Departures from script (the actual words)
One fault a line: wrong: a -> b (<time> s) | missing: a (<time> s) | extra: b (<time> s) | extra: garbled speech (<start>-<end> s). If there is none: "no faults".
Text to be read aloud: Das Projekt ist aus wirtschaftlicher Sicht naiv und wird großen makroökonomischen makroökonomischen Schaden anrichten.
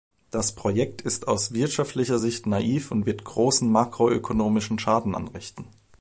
missing: makroökonomischen (4.8 s)